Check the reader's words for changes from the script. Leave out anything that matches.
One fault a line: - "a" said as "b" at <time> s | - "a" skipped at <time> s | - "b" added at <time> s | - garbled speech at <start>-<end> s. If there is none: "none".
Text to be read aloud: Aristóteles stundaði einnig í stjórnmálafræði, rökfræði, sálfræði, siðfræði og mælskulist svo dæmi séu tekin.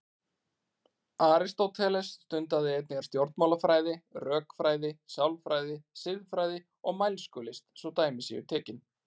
none